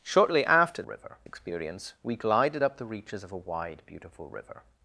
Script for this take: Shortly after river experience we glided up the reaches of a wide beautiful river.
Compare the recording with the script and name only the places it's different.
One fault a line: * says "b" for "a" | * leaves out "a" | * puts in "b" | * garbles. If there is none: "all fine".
all fine